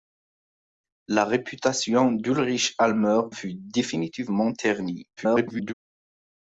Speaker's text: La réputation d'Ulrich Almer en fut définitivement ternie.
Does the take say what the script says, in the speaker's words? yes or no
no